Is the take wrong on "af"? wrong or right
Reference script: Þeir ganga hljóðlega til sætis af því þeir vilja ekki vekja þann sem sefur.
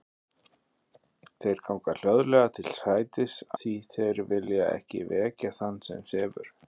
wrong